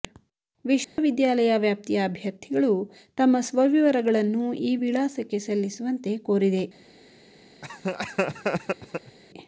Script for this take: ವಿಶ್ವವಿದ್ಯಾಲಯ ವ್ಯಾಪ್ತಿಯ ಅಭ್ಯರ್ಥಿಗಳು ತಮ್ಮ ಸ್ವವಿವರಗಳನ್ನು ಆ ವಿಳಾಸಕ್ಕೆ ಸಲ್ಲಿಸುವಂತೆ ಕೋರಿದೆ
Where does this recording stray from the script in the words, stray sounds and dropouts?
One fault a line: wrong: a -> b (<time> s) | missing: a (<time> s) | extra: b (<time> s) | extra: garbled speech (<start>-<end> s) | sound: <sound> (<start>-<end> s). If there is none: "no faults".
sound: dropout (0.8-1.0 s)
wrong: ಆ -> ಈ (4.6 s)
sound: laugh (7.6-9.2 s)